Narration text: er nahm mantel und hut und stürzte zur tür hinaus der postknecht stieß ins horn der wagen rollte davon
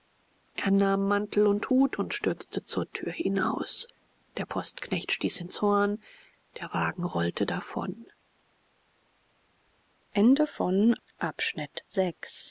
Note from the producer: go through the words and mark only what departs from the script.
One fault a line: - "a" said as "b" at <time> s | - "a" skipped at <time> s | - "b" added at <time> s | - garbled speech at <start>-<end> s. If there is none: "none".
none